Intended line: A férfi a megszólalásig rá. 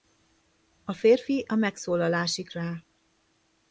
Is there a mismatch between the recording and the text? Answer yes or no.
no